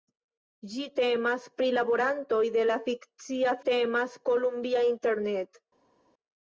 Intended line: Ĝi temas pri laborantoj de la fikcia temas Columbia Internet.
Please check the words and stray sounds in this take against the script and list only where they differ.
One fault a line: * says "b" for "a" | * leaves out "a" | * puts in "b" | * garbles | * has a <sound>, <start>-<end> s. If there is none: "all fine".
all fine